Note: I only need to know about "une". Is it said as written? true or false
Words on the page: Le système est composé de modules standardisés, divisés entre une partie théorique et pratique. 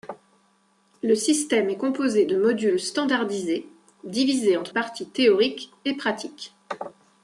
false